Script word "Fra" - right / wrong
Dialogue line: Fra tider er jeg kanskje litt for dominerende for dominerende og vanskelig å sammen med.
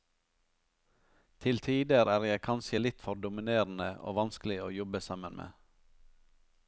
wrong